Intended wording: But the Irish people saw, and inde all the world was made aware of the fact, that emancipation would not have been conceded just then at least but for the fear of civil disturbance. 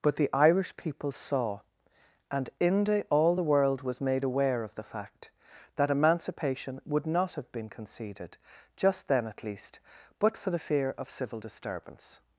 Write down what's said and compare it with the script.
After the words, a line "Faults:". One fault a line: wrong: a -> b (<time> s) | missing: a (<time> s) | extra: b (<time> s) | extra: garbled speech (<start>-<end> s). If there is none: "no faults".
But the Irish people saw, and inde all the world was made aware of the fact, that emancipation would not have been conceded just then at least but for the fear of civil disturbance.
Faults:
no faults